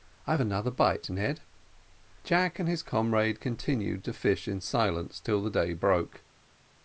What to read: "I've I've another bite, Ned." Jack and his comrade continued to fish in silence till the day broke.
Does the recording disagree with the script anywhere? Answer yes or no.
yes